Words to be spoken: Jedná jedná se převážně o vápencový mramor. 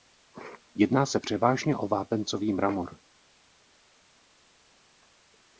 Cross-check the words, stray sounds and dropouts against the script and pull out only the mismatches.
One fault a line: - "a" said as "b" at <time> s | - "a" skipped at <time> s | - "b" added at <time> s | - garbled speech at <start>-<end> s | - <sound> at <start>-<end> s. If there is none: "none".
- "jedná" skipped at 1.1 s